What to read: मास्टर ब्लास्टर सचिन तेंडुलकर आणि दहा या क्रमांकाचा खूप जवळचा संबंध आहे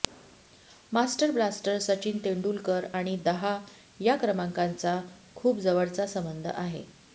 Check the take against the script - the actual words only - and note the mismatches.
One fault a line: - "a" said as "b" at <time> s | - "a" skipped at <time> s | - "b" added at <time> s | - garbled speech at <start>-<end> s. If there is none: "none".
none